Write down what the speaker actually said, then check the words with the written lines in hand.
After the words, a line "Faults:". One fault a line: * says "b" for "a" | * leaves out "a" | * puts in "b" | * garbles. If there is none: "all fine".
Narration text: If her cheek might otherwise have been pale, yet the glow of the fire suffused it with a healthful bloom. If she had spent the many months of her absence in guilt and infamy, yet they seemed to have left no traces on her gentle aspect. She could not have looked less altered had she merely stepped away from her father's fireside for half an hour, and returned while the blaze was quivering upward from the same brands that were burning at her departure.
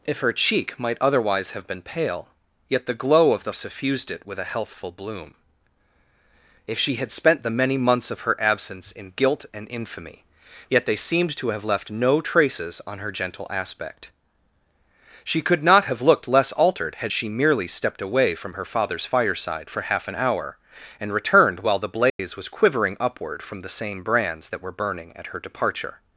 If her cheek might otherwise have been pale, yet the glow of the suffused it with a healthful bloom. If she had spent the many months of her absence in guilt and infamy, yet they seemed to have left no traces on her gentle aspect. She could not have looked less altered had she merely stepped away from her father's fireside for half an hour, and returned while the blaze was quivering upward from the same brands that were burning at her departure.
Faults:
* leaves out "fire"